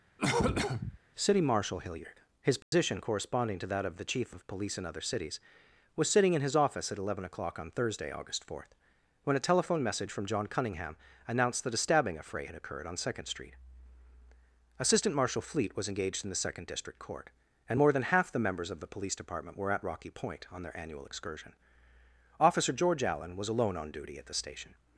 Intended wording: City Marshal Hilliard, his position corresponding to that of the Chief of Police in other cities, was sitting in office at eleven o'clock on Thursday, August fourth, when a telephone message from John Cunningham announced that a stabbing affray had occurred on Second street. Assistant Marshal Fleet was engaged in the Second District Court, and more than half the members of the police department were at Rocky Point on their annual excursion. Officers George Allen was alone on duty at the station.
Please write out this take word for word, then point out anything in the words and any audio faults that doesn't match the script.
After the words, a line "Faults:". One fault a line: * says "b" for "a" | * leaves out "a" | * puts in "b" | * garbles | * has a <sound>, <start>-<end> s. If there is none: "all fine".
City Marshal Hilliard, his position corresponding to that of the Chief of Police in other cities, was sitting in his office at eleven o'clock on Thursday, August fourth, when a telephone message from John Cunningham announced that a stabbing affray had occurred on Second street. Assistant Marshal Fleet was engaged in the Second District Court, and more than half the members of the police department were at Rocky Point on their annual excursion. Officer George Allen was alone on duty at the station.
Faults:
* has a cough, 0.2-1.0 s
* has a dropout, 2.6-2.7 s
* puts in "his"
* says "Officer" for "Officers"